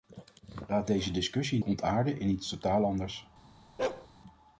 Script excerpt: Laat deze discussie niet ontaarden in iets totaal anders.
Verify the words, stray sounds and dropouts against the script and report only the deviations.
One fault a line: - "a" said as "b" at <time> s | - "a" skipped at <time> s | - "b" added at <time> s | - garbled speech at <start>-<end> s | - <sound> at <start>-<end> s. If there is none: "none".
- "niet" skipped at 1.6 s
- bark at 3.8-4.1 s